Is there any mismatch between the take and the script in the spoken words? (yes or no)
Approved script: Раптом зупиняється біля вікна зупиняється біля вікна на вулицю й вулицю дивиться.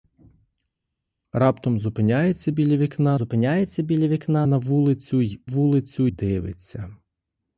no